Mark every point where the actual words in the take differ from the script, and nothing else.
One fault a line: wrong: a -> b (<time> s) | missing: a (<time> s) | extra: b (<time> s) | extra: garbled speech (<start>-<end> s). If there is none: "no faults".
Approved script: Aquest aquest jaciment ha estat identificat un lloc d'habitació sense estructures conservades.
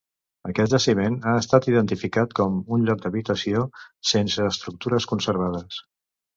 missing: aquest (0.7 s)
extra: com (2.4 s)